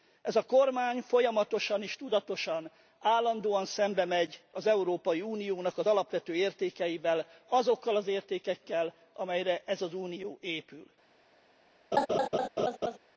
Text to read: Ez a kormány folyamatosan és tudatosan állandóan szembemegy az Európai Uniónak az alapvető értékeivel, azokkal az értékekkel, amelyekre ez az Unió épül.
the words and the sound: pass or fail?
fail